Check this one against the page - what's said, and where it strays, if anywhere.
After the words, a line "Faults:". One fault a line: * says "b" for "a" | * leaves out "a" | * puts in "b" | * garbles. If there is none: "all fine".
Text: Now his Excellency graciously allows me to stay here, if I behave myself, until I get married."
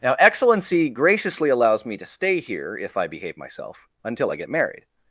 Now Excellency graciously allows me to stay here, if I behave myself, until I get married."
Faults:
* leaves out "his"